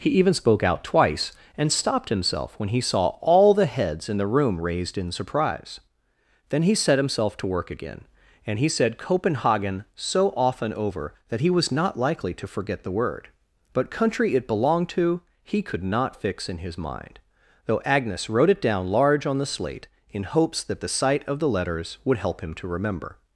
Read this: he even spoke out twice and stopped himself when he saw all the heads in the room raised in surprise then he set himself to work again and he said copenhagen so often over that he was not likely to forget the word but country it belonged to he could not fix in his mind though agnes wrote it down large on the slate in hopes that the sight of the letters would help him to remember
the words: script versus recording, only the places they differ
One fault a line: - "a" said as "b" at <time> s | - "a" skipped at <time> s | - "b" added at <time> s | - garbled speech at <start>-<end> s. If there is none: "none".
none